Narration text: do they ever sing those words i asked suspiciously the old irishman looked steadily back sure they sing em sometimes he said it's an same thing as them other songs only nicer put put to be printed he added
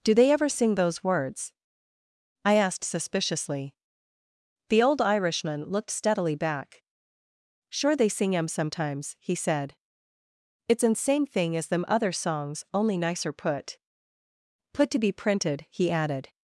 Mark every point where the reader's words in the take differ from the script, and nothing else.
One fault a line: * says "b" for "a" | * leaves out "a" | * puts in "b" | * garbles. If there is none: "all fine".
all fine